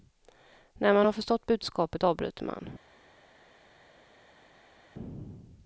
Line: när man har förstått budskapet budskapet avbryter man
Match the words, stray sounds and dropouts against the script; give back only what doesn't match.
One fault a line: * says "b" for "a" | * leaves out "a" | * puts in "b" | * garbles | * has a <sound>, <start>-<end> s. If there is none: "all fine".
* leaves out "budskapet"